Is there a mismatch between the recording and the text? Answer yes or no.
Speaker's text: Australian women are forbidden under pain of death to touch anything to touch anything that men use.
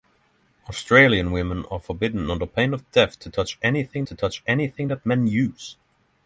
no